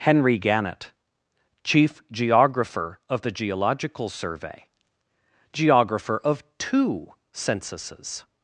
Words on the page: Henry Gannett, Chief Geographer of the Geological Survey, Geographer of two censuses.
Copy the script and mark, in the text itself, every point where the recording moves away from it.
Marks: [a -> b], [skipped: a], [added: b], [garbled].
Henry Gannett, Chief Geographer of the Geological Survey, Geographer of two censuses.